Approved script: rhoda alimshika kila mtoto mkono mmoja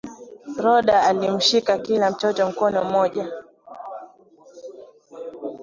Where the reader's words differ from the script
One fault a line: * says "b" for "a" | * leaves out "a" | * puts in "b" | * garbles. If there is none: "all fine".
all fine